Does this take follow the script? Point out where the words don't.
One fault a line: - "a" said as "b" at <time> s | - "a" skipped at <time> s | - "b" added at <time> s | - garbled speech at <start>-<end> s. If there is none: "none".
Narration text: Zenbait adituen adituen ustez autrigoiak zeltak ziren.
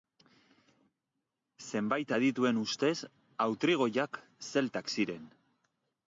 - "adituen" skipped at 2.6 s